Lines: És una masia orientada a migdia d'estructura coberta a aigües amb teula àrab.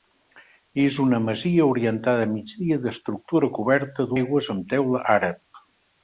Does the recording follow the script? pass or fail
pass